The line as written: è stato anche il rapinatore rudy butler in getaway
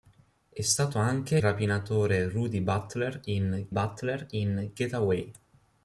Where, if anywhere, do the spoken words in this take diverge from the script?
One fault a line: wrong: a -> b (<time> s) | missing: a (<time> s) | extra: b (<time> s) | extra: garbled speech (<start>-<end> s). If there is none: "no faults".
missing: il (1.4 s)
extra: butler in (3.7 s)